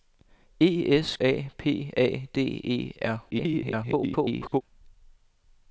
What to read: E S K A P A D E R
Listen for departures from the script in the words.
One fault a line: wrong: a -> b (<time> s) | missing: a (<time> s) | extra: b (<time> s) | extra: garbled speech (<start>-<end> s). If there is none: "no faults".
missing: K (1.1 s)
extra: garbled speech (3.3-4.6 s)